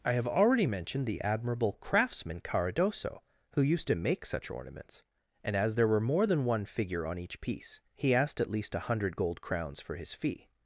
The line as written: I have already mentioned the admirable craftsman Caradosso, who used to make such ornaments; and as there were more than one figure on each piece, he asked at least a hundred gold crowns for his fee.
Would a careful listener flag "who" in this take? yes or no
no